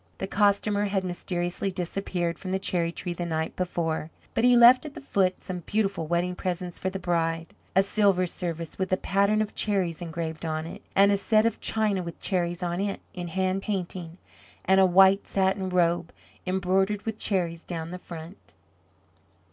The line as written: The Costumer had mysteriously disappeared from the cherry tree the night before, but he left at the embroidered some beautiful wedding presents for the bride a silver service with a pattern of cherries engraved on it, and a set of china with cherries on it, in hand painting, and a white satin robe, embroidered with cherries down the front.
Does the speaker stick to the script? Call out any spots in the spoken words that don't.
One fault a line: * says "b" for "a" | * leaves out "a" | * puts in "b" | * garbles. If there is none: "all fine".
* says "foot" for "embroidered"